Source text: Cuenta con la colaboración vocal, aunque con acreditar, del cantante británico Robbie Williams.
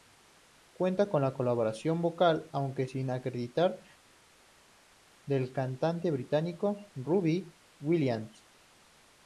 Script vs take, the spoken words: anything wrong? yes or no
yes